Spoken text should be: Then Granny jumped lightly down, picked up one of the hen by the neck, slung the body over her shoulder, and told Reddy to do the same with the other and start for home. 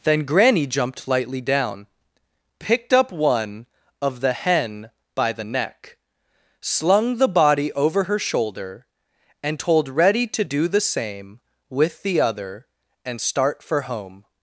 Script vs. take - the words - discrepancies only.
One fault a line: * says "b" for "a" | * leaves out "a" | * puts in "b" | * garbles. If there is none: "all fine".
all fine